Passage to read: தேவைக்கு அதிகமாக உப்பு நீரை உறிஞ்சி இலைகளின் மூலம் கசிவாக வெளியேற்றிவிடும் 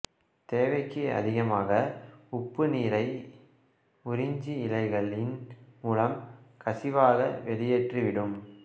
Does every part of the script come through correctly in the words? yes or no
yes